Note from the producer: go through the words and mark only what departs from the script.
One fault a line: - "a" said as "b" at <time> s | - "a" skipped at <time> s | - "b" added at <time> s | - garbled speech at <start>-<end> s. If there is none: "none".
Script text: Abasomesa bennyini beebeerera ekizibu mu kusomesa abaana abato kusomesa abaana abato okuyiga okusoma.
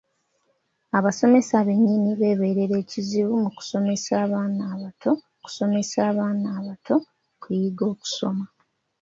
none